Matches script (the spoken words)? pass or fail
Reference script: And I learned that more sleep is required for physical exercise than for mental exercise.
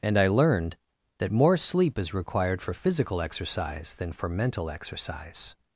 pass